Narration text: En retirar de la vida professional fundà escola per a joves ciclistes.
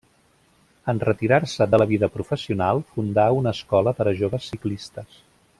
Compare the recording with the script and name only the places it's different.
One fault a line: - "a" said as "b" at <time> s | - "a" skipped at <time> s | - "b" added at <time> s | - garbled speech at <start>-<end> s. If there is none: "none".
- "se" added at 1.5 s
- "una" added at 3.4 s